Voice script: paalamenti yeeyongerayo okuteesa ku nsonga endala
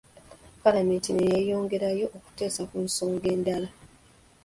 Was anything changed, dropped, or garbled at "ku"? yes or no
no